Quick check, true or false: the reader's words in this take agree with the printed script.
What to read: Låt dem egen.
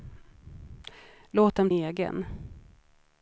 true